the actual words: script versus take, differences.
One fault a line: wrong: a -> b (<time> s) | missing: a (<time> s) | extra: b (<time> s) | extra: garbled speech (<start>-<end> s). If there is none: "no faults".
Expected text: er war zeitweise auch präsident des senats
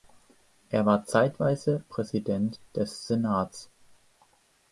missing: auch (1.8 s)